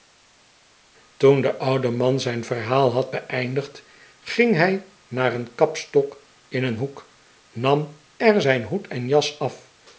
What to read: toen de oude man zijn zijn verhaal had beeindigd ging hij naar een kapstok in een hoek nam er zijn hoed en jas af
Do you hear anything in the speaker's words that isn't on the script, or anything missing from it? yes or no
yes